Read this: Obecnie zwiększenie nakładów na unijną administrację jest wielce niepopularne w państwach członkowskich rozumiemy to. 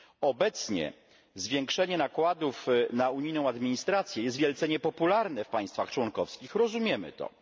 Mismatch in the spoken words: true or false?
false